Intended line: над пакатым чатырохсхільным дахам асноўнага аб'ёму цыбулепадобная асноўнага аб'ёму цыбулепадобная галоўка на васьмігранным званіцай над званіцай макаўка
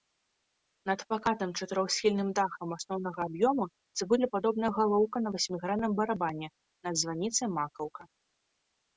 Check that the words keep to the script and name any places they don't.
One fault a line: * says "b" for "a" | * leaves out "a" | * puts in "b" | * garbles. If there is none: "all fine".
* leaves out "асноўнага аб'ёму цыбулепадобная"
* says "барабане" for "званіцай"